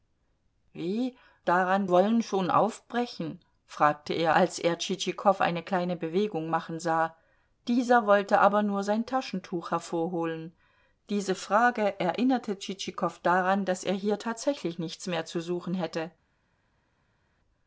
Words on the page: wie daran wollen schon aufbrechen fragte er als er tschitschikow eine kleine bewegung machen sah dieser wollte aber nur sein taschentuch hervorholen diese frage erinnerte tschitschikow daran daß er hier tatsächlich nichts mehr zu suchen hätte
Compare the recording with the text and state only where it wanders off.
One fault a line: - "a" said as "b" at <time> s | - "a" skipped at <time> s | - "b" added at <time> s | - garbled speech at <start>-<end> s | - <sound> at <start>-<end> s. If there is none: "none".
none